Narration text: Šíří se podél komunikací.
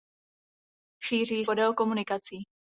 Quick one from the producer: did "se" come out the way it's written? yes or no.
no